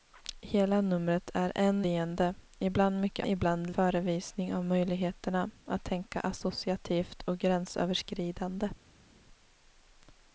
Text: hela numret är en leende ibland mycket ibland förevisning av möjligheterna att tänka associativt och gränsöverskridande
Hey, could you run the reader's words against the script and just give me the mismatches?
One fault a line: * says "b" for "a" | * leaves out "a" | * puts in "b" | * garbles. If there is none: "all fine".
all fine